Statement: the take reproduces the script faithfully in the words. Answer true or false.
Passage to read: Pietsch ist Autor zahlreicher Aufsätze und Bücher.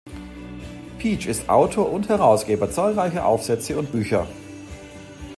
false